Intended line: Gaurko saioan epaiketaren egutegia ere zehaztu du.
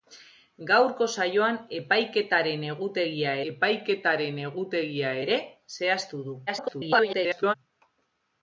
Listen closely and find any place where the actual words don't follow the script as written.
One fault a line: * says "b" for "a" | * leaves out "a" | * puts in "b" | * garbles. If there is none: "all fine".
* puts in "epaiketaren egutegia"
* garbles